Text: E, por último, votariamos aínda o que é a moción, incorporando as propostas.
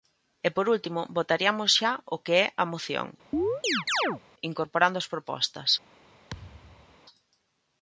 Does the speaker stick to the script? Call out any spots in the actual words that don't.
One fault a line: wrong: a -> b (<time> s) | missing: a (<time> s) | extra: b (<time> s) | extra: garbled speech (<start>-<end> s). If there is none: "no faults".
wrong: aínda -> xa (1.8 s)